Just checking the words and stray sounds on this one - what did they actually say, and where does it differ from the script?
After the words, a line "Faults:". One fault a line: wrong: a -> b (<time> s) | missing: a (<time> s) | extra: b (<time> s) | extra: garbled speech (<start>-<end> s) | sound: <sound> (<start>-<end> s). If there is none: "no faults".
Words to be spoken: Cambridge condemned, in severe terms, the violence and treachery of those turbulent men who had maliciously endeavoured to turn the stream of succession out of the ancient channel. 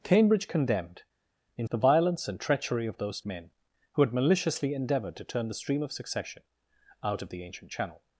Cambridge condemned, in the violence and treachery of those men who had maliciously endeavoured to turn the stream of succession out of the ancient channel.
Faults:
missing: severe terms (1.7 s)
missing: turbulent (3.2 s)